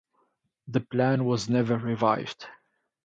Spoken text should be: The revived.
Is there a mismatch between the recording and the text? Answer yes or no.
yes